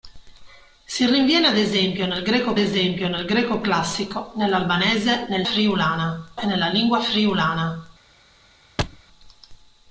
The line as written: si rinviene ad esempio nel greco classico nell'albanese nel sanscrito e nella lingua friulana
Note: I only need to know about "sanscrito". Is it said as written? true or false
false